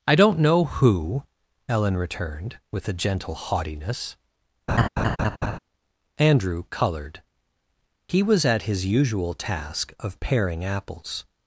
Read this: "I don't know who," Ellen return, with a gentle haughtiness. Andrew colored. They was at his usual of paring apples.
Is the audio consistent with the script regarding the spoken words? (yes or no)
no